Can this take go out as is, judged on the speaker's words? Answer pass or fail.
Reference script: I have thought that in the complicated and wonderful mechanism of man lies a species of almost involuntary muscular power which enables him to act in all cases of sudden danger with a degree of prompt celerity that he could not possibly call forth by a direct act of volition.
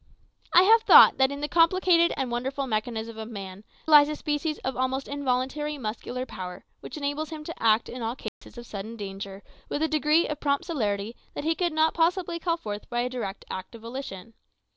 pass